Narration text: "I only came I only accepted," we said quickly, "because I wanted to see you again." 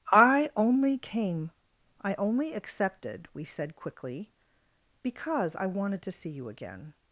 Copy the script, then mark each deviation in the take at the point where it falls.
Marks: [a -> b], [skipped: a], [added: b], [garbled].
"I only came I only accepted," we said quickly, "because I wanted to see you again."